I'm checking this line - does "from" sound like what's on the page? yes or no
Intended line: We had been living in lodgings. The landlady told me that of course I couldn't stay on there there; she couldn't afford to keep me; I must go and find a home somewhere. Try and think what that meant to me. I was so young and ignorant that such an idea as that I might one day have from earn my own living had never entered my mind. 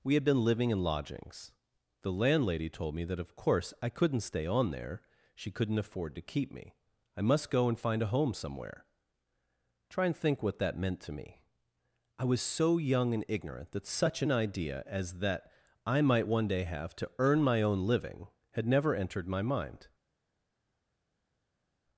no